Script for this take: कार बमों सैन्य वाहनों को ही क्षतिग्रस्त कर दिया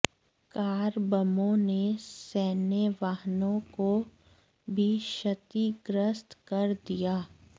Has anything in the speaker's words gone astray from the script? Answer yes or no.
yes